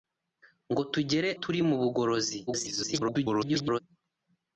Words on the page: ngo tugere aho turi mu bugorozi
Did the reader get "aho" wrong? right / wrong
wrong